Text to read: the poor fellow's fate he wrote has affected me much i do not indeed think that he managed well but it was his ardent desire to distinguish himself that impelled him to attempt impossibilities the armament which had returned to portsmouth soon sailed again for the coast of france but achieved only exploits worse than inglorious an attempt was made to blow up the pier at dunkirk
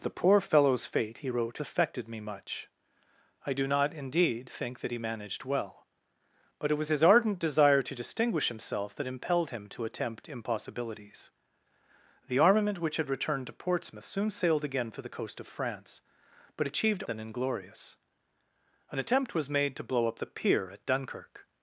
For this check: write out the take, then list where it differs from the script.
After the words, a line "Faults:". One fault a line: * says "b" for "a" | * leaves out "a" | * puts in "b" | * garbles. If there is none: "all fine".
the poor fellow's fate he wrote affected me much i do not indeed think that he managed well but it was his ardent desire to distinguish himself that impelled him to attempt impossibilities the armament which had returned to portsmouth soon sailed again for the coast of france but achieved than inglorious an attempt was made to blow up the pier at dunkirk
Faults:
* leaves out "has"
* leaves out "only exploits worse"